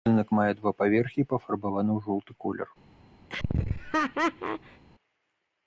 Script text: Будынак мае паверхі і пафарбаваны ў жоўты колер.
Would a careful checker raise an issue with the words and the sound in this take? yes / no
yes